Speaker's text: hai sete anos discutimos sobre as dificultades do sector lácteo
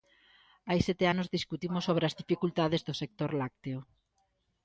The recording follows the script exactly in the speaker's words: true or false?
true